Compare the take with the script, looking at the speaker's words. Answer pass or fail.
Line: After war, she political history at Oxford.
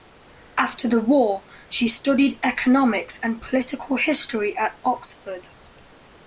fail